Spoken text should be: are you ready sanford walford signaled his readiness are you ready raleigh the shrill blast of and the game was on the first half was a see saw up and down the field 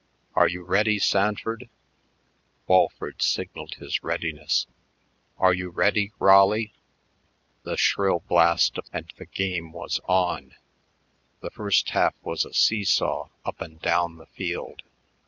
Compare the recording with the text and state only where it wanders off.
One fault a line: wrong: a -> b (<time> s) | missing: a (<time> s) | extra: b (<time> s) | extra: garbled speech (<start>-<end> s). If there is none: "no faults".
no faults